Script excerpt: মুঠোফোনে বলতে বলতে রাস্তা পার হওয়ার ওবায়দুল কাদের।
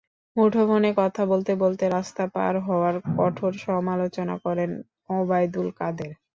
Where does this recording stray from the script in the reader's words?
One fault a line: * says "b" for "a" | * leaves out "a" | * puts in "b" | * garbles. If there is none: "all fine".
* puts in "কথা"
* puts in "কঠোর সমালোচনা করেন"